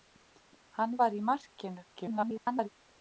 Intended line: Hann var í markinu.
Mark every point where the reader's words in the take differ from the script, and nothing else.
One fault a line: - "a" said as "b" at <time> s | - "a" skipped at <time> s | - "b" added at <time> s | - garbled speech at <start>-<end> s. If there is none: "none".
- garbled speech at 1.9-2.7 s